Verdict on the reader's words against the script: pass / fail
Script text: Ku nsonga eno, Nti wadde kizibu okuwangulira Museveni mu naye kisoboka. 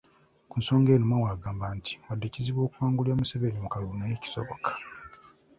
fail